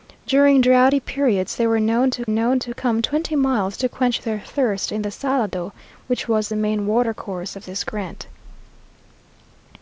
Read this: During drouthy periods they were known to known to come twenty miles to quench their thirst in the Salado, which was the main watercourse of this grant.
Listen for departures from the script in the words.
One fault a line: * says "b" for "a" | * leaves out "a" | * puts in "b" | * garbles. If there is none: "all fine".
all fine